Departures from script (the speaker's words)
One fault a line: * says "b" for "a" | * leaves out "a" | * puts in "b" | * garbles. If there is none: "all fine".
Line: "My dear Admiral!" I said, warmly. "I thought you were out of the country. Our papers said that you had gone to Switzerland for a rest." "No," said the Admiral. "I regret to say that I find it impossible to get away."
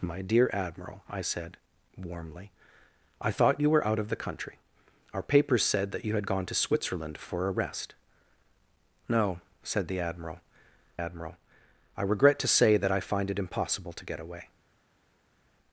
* puts in "Admiral"